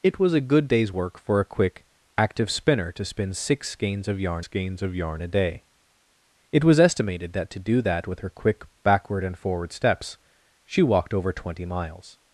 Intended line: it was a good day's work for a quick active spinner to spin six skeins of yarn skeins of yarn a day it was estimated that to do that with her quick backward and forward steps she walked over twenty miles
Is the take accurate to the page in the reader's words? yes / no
yes